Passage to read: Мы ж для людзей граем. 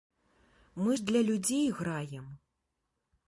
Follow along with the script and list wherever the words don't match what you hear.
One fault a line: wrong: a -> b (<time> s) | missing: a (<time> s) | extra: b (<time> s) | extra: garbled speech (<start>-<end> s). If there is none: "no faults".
no faults